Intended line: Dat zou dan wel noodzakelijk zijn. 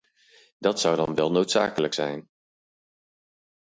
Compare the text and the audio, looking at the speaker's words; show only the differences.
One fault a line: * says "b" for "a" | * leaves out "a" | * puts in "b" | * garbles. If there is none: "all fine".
all fine